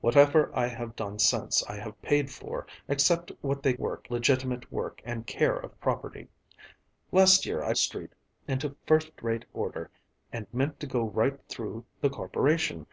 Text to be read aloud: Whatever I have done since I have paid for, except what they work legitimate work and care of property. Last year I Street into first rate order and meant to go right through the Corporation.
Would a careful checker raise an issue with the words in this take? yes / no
no